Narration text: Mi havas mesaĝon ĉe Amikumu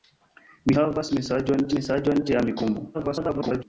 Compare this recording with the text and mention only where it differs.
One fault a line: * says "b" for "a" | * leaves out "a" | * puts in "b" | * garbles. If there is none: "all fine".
* puts in "mesaĝon"
* garbles